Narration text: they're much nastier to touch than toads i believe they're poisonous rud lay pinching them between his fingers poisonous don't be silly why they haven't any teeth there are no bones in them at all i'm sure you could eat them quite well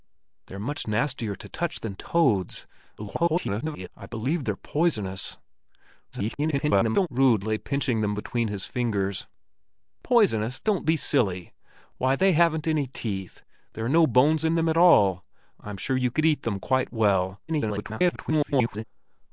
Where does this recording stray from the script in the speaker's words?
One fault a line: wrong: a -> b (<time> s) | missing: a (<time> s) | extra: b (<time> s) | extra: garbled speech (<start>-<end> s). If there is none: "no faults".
extra: garbled speech (3.0-3.9 s)
extra: garbled speech (6.1-7.1 s)
extra: garbled speech (17.5-18.8 s)